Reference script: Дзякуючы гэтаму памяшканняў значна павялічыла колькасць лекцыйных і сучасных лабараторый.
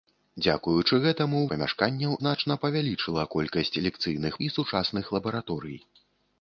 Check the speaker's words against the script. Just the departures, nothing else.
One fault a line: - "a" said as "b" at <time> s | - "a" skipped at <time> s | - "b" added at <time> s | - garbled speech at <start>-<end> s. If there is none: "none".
none